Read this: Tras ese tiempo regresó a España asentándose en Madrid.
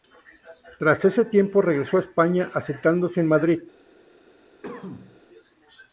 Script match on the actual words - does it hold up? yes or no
yes